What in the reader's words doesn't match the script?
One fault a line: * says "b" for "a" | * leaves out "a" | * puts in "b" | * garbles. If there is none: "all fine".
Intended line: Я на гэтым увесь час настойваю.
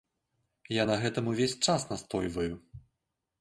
all fine